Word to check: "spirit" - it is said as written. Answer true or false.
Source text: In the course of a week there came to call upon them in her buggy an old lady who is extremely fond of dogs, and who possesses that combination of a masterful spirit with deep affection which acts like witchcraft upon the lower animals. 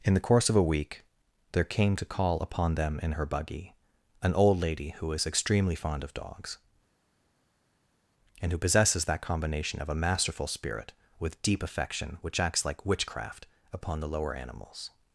true